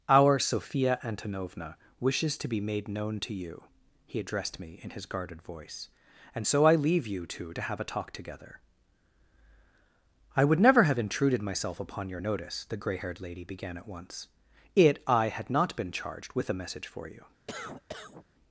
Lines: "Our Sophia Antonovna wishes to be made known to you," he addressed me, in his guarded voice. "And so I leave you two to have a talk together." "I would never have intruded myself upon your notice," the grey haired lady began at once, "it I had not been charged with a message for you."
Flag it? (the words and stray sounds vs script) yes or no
yes